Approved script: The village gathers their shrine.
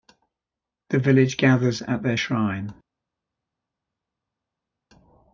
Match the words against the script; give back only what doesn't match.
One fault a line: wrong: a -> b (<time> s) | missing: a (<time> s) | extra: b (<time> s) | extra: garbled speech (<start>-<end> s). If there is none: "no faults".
extra: at (1.8 s)